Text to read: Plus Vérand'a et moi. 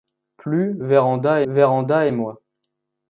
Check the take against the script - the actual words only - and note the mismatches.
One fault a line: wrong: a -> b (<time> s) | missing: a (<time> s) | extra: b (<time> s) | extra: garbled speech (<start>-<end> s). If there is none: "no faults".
extra: Vérand'a (1.5 s)